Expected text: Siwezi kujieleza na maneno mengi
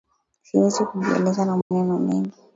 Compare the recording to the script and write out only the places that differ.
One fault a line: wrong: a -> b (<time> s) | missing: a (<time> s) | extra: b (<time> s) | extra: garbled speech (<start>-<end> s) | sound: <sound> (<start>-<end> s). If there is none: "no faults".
sound: dropout (1.6-1.7 s)